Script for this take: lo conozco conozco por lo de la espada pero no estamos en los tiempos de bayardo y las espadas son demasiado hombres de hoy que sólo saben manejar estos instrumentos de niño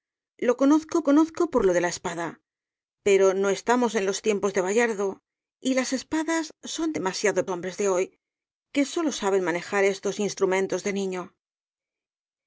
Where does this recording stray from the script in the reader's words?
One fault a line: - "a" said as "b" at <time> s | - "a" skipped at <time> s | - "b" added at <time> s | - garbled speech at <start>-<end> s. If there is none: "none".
none